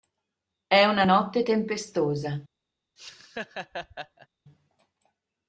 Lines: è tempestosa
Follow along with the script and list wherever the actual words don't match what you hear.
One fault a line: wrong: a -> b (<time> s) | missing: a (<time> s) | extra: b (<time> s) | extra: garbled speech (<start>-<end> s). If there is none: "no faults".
extra: una notte (0.8 s)